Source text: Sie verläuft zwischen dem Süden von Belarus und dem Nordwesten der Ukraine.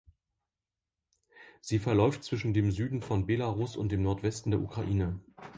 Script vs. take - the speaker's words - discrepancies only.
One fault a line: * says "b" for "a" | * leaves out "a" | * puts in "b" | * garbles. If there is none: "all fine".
all fine